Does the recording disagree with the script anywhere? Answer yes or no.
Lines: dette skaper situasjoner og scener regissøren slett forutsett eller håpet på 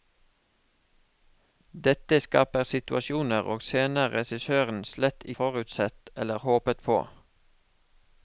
no